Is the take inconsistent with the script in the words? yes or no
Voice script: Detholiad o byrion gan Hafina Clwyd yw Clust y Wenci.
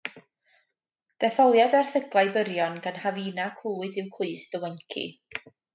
yes